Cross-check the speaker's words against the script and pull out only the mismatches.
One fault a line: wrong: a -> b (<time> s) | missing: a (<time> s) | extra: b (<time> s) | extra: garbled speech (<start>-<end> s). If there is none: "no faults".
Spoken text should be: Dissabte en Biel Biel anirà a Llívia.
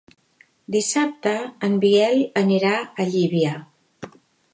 missing: Biel (2.2 s)